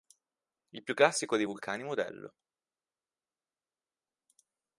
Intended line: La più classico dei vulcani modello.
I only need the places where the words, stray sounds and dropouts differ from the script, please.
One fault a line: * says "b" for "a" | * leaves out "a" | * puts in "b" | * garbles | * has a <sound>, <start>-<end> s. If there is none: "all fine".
* says "Il" for "La"